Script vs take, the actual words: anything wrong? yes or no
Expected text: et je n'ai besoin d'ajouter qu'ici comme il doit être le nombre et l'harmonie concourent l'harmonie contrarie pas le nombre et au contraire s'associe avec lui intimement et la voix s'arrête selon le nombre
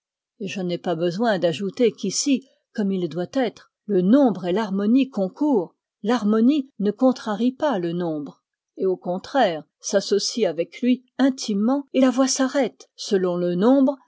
yes